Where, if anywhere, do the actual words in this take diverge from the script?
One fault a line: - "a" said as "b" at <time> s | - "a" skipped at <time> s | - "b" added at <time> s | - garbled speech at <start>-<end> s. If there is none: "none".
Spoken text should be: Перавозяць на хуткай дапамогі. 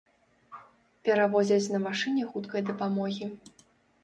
- "машыне" added at 1.9 s